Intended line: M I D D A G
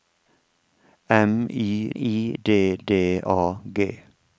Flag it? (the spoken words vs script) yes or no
yes